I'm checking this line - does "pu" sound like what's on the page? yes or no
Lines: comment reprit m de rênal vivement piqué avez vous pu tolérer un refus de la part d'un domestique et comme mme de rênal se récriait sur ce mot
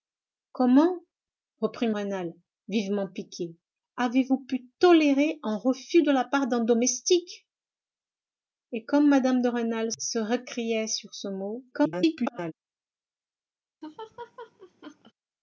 yes